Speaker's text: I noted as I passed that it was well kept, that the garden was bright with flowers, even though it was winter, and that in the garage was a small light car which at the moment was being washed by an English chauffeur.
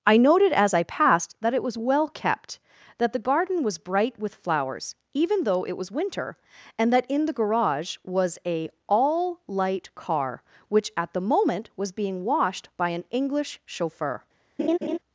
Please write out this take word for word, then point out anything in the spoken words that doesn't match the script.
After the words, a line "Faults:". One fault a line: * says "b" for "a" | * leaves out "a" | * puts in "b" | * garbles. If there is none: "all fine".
I noted as I passed that it was well kept, that the garden was bright with flowers, even though it was winter, and that in the garage was a all light car which at the moment was being washed by an English chauffeur.
Faults:
* says "all" for "small"